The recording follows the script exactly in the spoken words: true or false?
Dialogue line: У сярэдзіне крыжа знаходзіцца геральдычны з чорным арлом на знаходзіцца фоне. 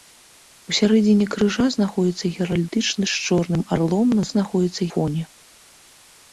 true